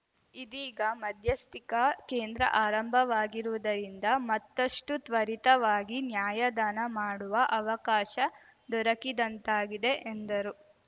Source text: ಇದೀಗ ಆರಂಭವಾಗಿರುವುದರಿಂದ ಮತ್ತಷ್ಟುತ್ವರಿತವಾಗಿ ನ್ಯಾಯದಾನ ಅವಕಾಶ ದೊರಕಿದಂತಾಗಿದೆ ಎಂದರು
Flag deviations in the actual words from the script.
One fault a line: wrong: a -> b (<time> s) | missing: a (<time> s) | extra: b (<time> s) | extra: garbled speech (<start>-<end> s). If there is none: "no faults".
extra: ಮಧ್ಯಸ್ಥಿಕಾ ಕೇಂದ್ರ (1.0 s)
extra: ಮಾಡುವ (7.0 s)